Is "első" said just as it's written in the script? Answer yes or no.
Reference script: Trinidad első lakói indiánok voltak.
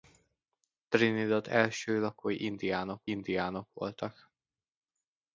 yes